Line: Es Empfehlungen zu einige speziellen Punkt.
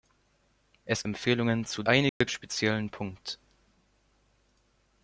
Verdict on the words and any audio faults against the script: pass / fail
fail